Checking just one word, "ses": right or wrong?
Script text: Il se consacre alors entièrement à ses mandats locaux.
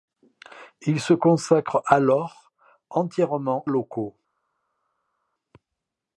wrong